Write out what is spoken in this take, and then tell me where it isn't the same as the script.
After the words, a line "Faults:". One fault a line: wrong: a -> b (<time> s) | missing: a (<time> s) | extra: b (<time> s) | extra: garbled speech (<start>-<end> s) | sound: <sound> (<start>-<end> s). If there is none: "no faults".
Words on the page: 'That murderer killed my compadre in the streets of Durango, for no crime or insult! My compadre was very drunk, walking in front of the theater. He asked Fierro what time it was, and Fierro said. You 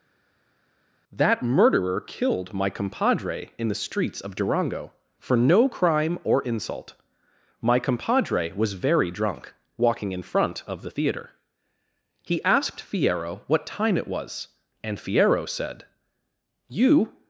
'That murderer killed my compadre in the streets of Durango, for no crime or insult! My compadre was very drunk, walking in front of the theater. He asked Fierro what time it was, and Fierro said. You
Faults:
no faults